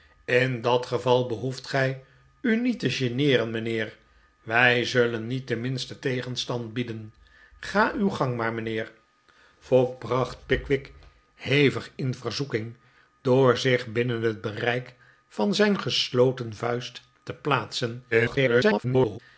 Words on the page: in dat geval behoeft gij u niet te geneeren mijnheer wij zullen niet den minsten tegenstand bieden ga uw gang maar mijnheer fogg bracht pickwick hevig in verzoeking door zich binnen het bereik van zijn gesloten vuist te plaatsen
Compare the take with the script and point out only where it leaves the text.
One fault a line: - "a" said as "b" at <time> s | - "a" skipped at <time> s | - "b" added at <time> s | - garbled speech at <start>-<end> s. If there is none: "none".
- garbled speech at 18.1-19.2 s